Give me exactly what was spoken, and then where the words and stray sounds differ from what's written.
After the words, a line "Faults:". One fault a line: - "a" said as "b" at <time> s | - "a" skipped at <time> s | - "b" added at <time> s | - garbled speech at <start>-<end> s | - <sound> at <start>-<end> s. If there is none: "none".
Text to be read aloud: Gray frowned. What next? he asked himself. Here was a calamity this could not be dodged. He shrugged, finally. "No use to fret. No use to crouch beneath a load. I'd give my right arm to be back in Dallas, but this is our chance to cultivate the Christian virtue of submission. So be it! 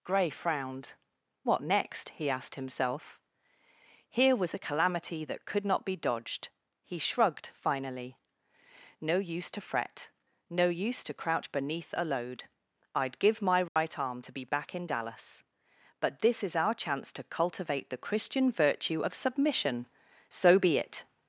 Gray frowned. What next? he asked himself. Here was a calamity that could not be dodged. He shrugged, finally. "No use to fret. No use to crouch beneath a load. I'd give my right arm to be back in Dallas, but this is our chance to cultivate the Christian virtue of submission. So be it!
Faults:
- "this" said as "that" at 5.2 s
- dropout at 13.7-13.8 s